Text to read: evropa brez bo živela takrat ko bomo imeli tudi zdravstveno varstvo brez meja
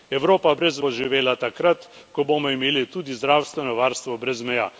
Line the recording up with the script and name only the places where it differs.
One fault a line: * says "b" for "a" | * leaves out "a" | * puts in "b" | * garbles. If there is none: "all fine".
all fine